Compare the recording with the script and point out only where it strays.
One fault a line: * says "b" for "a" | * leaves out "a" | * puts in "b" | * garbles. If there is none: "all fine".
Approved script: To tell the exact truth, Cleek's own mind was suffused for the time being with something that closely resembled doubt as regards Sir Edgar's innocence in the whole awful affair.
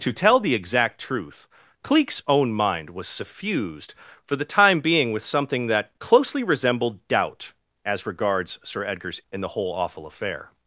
* leaves out "innocence"